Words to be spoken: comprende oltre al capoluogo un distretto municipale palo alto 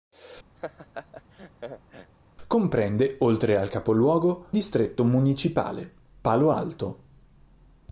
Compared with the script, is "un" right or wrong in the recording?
wrong